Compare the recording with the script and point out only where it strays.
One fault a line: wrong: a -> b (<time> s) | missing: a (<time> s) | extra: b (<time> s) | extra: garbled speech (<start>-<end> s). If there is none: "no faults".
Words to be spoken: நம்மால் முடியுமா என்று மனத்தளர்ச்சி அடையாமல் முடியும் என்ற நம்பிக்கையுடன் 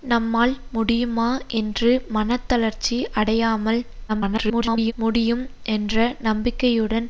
extra: garbled speech (4.1-4.9 s)